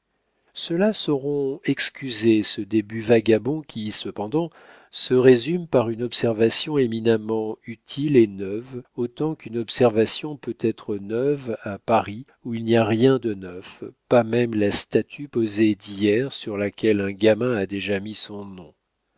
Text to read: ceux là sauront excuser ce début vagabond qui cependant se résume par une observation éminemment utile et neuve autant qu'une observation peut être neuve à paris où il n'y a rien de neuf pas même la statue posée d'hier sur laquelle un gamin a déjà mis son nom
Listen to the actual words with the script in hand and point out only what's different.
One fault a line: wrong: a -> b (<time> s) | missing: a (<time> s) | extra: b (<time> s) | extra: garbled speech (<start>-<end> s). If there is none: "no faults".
no faults